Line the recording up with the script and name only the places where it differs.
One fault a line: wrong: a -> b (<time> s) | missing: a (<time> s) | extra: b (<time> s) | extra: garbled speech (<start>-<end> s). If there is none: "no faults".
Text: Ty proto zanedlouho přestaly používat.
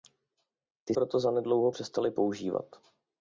no faults